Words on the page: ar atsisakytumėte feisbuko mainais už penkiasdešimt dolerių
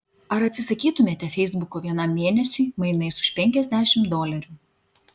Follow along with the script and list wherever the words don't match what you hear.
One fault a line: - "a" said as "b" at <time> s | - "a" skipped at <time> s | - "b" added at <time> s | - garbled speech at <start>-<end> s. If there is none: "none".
- "vienam mėnesiui" added at 1.9 s